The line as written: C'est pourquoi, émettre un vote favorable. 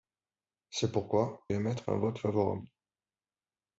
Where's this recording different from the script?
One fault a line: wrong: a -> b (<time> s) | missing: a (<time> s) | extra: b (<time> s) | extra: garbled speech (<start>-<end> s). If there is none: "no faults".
no faults